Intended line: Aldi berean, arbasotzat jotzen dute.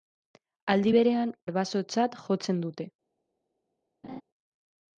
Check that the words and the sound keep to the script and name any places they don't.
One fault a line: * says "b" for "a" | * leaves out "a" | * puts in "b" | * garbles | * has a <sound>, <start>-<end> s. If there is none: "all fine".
* has a laugh, 4.0-4.2 s